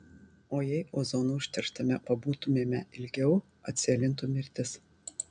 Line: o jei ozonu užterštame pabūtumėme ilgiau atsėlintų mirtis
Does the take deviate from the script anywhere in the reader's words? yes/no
no